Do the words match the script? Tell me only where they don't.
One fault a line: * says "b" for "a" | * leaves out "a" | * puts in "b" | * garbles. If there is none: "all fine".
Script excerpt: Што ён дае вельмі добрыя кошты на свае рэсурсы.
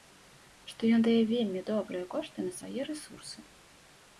all fine